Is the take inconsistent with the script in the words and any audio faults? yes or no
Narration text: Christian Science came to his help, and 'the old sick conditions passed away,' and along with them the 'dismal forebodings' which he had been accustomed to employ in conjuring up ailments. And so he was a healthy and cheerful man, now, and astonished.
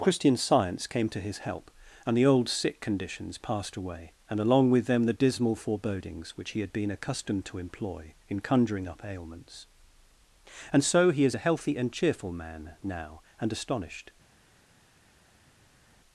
yes